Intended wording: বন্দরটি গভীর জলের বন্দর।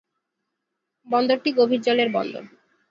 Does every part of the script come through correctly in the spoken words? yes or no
yes